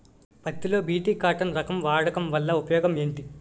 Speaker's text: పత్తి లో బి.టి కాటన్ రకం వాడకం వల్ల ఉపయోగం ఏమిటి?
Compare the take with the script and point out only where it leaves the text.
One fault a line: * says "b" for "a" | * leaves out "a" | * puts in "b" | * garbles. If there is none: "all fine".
all fine